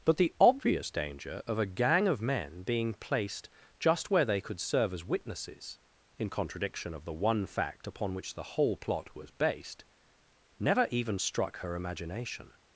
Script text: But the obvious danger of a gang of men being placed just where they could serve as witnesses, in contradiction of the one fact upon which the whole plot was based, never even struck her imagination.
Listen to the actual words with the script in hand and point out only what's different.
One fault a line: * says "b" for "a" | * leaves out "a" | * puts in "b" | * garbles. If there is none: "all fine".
all fine